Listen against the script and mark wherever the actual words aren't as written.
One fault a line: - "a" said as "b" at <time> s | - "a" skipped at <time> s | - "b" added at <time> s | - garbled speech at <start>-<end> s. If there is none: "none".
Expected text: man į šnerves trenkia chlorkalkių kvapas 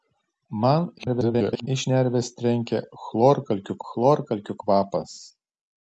- garbled speech at 1.0-1.7 s
- "chlorkalkių" added at 3.9 s